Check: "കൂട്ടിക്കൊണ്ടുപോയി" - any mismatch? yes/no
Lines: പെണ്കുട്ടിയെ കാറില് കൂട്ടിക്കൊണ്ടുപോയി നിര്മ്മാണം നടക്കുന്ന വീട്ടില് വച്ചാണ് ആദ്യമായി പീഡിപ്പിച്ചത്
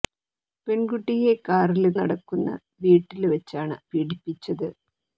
yes